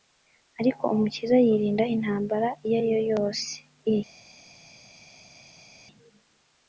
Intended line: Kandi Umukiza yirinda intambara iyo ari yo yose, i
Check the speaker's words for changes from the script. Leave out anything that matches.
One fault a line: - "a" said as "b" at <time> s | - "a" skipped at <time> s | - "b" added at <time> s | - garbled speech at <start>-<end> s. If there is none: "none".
- "Kandi" said as "Ariko" at 0.6 s